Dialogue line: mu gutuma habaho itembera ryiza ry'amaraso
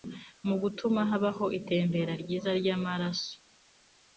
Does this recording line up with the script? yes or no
yes